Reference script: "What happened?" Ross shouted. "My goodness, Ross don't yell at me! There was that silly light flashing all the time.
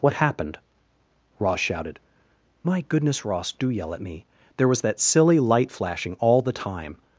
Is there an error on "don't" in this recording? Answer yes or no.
yes